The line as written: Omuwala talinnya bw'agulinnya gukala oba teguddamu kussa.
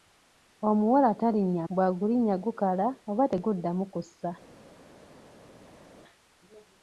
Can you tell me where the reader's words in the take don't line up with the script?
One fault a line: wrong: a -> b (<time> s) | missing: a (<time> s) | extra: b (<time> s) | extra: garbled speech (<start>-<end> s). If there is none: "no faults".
no faults